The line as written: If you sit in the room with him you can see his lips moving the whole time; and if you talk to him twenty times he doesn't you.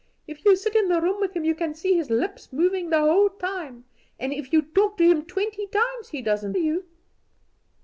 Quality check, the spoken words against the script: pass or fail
pass